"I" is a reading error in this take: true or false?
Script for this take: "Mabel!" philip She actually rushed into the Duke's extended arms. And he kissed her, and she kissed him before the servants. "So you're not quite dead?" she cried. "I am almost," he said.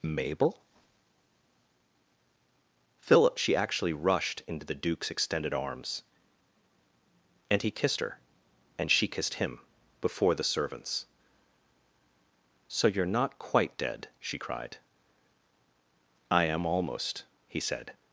false